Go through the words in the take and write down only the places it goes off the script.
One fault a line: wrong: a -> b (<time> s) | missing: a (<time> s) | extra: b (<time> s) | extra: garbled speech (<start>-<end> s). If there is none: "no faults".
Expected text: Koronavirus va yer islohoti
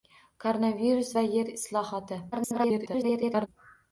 extra: garbled speech (2.3-3.5 s)